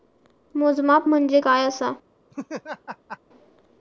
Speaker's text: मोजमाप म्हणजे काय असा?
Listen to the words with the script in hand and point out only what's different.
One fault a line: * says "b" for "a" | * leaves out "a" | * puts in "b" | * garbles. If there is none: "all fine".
all fine